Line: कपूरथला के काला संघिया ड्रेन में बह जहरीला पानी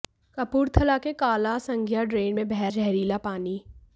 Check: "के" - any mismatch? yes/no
no